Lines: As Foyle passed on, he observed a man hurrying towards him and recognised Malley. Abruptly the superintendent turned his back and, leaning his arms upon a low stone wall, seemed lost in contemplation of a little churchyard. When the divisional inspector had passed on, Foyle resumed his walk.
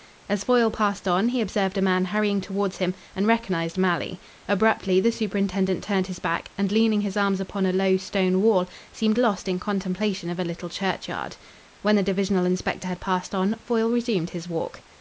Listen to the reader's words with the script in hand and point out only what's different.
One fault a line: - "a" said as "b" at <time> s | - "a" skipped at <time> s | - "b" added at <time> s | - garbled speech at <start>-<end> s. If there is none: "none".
none